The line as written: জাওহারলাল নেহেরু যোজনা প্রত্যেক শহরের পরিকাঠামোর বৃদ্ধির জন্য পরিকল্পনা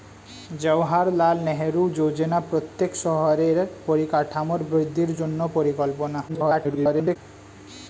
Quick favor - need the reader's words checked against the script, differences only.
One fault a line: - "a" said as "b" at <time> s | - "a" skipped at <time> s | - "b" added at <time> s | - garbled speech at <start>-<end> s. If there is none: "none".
- garbled speech at 6.3-7.2 s